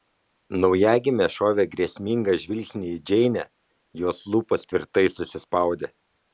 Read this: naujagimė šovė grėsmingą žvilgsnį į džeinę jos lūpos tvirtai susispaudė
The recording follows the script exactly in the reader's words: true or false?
true